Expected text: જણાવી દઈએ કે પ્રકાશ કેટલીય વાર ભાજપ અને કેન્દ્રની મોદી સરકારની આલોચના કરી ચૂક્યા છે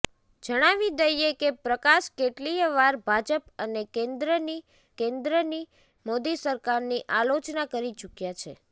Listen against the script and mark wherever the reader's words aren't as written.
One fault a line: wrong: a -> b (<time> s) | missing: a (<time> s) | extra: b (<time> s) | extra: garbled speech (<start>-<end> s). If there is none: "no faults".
extra: કેન્દ્રની (5.0 s)